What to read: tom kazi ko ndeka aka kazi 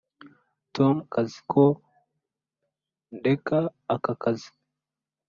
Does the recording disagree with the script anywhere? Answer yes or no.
no